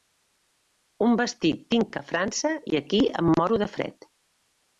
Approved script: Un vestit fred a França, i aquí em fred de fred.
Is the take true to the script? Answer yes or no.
no